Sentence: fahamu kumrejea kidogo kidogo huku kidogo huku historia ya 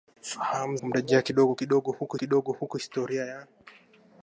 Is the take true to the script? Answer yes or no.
yes